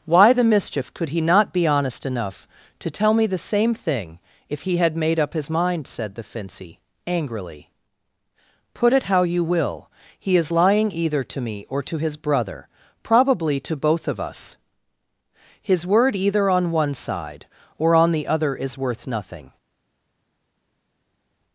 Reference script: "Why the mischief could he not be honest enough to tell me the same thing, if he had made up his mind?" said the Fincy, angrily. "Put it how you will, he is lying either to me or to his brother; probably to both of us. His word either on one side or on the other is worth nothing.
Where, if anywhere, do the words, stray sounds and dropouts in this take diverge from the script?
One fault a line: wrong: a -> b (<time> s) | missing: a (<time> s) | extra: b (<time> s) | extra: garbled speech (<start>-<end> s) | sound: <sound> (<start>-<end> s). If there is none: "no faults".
no faults